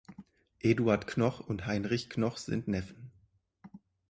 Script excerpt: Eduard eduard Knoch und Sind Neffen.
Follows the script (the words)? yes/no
no